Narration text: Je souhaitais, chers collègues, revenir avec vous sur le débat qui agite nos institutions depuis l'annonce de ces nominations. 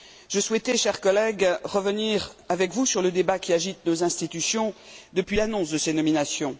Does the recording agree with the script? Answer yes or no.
yes